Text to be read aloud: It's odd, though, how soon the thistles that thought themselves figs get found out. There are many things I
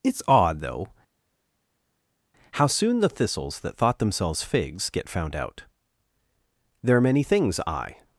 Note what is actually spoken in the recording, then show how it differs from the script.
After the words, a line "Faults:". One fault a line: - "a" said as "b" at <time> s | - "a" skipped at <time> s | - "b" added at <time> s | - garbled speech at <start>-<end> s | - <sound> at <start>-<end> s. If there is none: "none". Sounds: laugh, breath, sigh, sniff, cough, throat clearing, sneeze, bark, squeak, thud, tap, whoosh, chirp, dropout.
It's odd, though, how soon the thistles that thought themselves figs get found out. There are many things I
Faults:
none